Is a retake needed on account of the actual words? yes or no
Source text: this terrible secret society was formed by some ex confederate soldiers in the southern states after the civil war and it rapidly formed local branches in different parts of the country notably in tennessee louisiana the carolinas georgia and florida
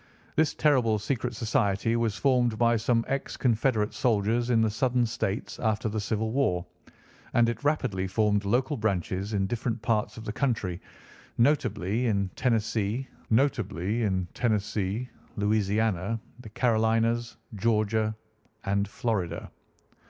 yes